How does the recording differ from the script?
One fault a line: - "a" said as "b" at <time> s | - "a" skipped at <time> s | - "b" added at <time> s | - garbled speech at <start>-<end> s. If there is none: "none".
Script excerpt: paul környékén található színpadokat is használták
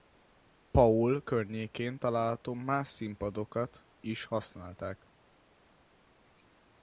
- "más" added at 2.5 s